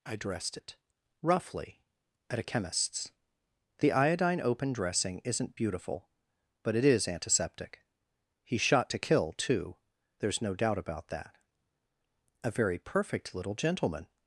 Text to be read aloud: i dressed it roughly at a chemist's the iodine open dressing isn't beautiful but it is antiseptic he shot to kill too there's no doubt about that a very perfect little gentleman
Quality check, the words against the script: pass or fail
pass